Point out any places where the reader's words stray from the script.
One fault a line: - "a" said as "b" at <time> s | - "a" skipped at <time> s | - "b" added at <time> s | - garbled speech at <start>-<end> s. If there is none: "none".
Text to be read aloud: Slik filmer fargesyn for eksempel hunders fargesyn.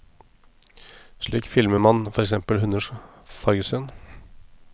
- "fargesyn" said as "man" at 1.8 s